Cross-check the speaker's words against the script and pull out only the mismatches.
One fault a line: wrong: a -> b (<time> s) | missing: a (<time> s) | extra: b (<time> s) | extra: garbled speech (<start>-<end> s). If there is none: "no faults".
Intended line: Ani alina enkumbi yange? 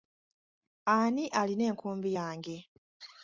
no faults